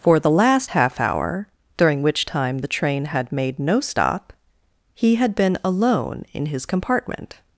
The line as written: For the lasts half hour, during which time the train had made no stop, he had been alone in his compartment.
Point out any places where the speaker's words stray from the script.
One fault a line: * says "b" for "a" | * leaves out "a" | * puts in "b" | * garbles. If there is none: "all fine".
* says "last" for "lasts"